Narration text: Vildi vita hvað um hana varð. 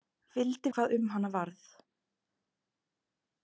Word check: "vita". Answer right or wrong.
wrong